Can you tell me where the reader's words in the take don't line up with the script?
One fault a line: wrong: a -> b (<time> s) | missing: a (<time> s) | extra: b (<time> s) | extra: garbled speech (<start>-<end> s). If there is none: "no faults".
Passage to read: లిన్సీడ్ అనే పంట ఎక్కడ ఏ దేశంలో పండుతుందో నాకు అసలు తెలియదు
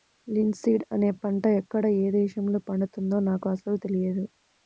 no faults